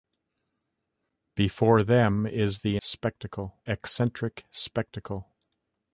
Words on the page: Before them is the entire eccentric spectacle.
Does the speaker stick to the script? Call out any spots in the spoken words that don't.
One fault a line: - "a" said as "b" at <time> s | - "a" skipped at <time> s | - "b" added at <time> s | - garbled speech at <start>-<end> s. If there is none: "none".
- "entire" said as "spectacle" at 2.8 s